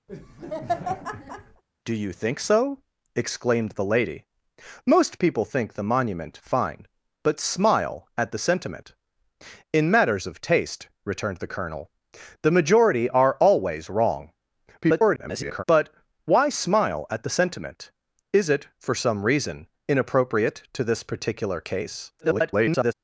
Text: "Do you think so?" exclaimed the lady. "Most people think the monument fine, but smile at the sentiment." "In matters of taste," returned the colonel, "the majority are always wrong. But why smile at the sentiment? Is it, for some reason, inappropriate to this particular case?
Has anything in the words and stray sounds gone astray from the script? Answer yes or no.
yes